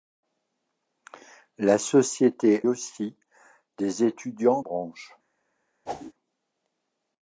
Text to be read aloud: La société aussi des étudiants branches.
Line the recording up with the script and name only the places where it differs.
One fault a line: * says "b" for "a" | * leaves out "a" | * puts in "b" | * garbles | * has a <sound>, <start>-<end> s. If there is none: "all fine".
* has a whoosh, 5.9-6.1 s